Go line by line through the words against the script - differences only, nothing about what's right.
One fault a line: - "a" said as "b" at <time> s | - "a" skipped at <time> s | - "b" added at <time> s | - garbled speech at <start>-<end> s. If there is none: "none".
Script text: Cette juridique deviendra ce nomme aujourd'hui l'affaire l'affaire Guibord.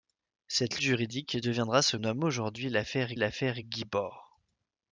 none